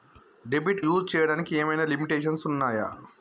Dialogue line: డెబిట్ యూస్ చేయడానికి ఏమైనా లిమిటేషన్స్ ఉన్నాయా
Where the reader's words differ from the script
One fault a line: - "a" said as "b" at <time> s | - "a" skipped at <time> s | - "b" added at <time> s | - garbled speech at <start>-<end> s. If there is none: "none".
none